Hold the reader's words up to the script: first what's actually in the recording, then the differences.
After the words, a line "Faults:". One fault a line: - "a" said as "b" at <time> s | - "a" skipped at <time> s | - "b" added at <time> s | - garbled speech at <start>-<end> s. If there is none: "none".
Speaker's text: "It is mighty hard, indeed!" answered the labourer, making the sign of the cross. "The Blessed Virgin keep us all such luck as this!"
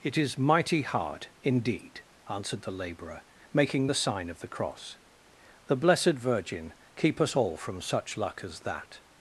"It is mighty hard, indeed!" answered the labourer, making the sign of the cross. "The Blessed Virgin keep us all from such luck as that!"
Faults:
- "from" added at 7.6 s
- "this" said as "that" at 8.6 s